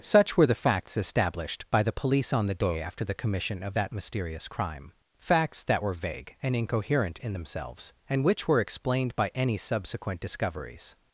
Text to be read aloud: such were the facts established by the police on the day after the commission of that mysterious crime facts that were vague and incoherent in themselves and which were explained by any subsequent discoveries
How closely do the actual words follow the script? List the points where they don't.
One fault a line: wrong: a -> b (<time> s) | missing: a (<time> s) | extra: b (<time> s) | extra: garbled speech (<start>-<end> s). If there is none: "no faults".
no faults